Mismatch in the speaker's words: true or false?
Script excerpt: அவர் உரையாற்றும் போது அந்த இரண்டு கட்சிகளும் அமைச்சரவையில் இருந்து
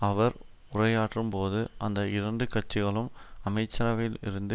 false